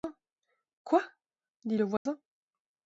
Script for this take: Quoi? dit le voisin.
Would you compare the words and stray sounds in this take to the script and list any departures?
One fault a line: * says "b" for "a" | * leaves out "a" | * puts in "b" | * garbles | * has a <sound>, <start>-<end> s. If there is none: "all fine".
* has a dropout, 2.0-2.1 s